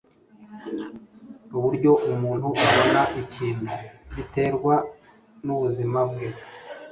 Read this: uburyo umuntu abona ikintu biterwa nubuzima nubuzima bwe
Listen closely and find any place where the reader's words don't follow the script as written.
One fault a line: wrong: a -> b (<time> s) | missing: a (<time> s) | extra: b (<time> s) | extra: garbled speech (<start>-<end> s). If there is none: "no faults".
missing: nubuzima (6.0 s)